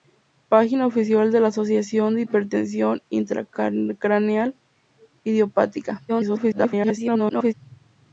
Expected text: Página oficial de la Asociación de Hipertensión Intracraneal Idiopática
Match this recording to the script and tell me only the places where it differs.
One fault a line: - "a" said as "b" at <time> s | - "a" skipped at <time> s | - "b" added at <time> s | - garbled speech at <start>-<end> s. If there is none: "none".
- garbled speech at 6.1-7.5 s